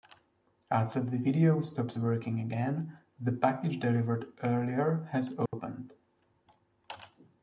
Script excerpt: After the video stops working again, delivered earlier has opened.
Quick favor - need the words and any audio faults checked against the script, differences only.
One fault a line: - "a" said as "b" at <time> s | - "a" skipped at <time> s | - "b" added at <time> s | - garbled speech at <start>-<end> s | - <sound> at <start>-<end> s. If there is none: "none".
- "the package" added at 3.2 s
- dropout at 5.5-5.5 s